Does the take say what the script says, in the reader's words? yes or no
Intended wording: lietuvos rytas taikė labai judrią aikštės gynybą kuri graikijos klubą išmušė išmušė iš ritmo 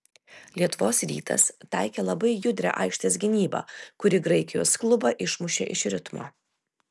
no